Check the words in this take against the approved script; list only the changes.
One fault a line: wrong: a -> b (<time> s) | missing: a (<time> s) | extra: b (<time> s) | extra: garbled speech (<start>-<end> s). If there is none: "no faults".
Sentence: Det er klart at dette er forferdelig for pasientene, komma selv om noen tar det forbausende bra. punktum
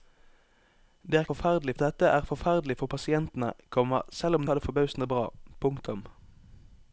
wrong: klart -> forferdelig (1.3 s)
missing: noen (4.5 s)